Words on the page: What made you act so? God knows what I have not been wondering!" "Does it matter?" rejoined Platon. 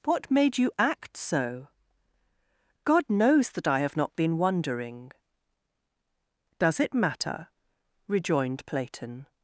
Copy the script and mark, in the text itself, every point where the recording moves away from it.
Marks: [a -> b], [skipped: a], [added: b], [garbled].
What made you act so? God knows [what -> that] I have not been wondering!" "Does it matter?" rejoined Platon.